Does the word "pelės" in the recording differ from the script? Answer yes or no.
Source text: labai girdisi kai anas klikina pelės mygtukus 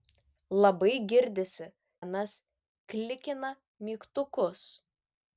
yes